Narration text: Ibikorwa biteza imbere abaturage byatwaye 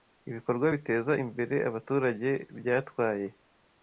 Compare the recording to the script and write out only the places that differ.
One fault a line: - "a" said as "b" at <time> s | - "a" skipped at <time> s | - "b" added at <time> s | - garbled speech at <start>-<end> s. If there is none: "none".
none